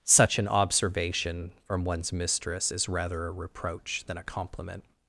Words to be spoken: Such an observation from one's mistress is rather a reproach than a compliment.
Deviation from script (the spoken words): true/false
false